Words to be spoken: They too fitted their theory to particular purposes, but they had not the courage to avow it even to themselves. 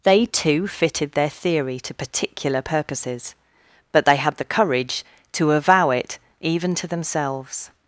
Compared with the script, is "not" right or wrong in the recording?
wrong